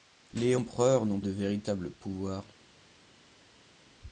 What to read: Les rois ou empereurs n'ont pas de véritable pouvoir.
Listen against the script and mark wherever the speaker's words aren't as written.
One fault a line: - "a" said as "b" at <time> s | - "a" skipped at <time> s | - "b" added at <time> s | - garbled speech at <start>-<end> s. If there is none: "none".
- "rois ou" skipped at 0.6 s
- "pas" skipped at 1.2 s